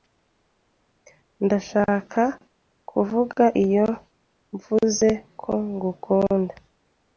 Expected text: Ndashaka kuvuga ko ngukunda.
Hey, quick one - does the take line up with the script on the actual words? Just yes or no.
no